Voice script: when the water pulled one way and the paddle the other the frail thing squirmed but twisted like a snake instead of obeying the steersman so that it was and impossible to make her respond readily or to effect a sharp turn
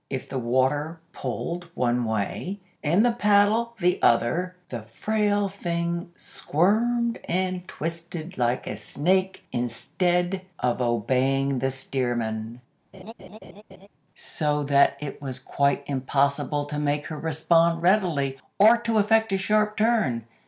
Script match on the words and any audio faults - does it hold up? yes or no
no